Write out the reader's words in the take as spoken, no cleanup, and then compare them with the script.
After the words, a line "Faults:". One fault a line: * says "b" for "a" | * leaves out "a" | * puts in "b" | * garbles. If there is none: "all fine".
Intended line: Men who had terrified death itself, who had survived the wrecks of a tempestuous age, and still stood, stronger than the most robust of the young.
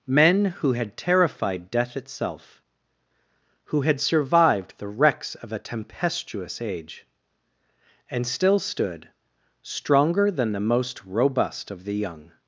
Men who had terrified death itself, who had survived the wrecks of a tempestuous age, and still stood, stronger than the most robust of the young.
Faults:
all fine